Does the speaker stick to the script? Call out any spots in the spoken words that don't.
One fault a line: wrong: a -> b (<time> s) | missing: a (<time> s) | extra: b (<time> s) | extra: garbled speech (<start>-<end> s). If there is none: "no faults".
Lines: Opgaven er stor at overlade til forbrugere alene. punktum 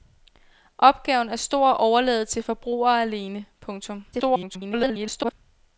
extra: garbled speech (4.1-5.3 s)